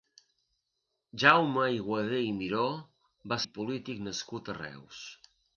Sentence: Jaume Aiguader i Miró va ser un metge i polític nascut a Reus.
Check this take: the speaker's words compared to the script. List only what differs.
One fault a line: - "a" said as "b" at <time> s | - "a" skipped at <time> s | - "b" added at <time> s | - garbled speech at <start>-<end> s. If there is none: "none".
- "ser un metge" skipped at 3.4 s